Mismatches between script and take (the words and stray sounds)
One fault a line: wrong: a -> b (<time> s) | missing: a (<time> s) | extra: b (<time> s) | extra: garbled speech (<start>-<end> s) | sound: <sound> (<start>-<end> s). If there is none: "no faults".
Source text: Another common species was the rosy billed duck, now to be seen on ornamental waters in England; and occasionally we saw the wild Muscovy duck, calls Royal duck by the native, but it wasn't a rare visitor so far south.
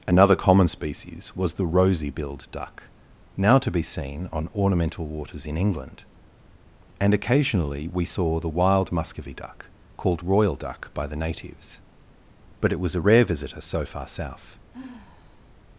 wrong: calls -> called (10.0 s)
wrong: native -> natives (11.2 s)
wrong: wasn't -> was (12.8 s)
sound: sigh (14.7-15.5 s)